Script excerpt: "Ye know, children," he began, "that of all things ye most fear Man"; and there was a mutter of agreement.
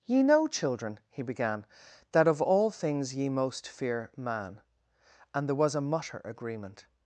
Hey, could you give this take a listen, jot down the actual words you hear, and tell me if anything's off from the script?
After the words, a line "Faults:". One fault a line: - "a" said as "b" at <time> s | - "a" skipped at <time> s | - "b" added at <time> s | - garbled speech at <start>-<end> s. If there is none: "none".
"Ye know, children," he began, "that of all things ye most fear Man"; and there was a mutter agreement.
Faults:
- "of" skipped at 6.2 s